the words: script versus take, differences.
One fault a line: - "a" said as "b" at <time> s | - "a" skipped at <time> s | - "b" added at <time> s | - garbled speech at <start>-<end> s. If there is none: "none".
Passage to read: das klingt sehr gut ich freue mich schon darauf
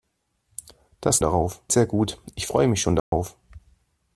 - "klingt" said as "darauf" at 1.2 s